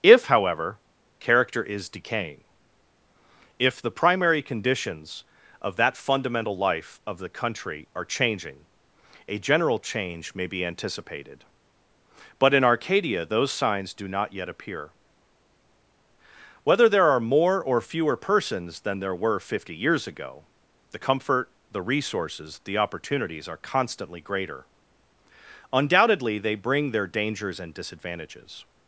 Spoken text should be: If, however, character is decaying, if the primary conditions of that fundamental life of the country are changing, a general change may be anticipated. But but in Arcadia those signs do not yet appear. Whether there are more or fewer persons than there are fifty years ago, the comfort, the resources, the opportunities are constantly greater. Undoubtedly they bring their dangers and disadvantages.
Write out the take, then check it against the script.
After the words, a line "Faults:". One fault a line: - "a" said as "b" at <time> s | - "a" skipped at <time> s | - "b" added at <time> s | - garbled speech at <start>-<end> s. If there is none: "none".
If, however, character is decaying, if the primary conditions of that fundamental life of the country are changing, a general change may be anticipated. But in Arcadia those signs do not yet appear. Whether there are more or fewer persons than there were fifty years ago, the comfort, the resources, the opportunities are constantly greater. Undoubtedly they bring their dangers and disadvantages.
Faults:
- "but" skipped at 12.6 s
- "are" said as "were" at 19.1 s